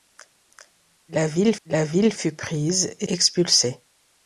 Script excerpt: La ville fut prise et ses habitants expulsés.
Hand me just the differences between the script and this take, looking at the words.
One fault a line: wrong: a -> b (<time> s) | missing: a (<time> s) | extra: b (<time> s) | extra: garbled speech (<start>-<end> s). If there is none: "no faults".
extra: la ville (1.7 s)
missing: ses habitants (3.1 s)